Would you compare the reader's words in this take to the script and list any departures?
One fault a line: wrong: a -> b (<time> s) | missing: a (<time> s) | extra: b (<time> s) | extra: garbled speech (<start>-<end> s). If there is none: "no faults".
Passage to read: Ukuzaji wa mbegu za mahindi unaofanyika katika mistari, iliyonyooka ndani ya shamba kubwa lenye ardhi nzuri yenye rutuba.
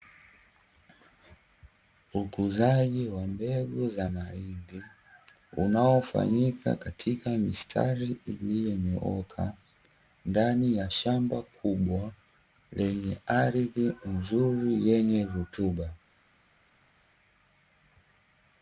no faults